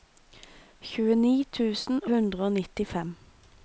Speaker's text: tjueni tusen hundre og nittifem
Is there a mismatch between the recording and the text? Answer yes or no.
no